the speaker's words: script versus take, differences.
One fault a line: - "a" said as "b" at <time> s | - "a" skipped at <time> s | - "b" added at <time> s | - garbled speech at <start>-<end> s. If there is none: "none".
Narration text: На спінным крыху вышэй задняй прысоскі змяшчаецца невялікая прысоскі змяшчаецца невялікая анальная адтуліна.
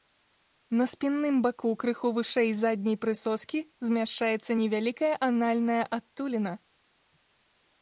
- "баку" added at 1.4 s
- "прысоскі змяшчаецца невялікая" skipped at 5.1 s